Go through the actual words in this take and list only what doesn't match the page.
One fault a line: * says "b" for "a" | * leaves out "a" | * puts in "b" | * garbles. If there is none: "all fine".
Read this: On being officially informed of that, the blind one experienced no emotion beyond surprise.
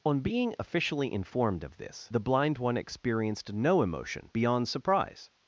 * says "this" for "that"